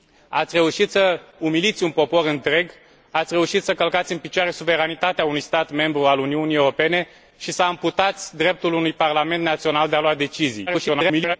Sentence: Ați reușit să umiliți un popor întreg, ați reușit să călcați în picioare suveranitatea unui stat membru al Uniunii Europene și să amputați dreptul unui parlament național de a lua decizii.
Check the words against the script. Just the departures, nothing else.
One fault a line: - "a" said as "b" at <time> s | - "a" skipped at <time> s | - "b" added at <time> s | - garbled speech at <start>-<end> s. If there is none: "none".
- garbled speech at 10.7-11.4 s